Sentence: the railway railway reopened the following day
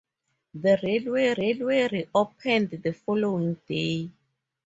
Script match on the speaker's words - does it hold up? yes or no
yes